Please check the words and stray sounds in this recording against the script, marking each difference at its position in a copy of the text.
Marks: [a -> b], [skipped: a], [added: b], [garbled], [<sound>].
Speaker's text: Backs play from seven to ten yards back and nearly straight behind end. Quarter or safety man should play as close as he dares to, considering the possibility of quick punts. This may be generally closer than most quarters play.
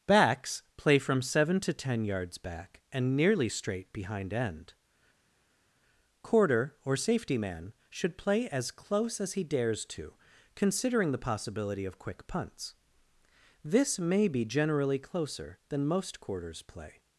Backs play from seven to ten yards back and nearly straight behind end. Quarter or safety man should play as close as he dares to, considering the possibility of quick punts. This may be generally closer than most quarters play.